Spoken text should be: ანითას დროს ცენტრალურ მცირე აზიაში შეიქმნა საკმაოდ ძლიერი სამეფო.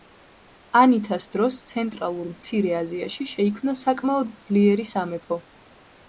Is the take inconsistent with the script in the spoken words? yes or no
no